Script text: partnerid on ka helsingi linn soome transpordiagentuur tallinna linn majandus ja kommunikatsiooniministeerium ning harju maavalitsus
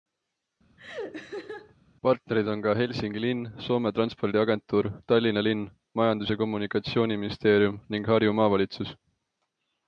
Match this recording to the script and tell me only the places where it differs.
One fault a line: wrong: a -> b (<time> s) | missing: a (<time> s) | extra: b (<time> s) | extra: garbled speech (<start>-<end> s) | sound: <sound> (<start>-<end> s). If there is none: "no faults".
sound: laugh (0.8-1.7 s)